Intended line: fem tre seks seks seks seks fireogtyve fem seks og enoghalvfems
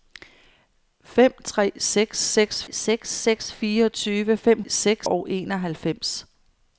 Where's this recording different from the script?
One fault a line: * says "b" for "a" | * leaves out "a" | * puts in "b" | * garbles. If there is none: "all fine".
all fine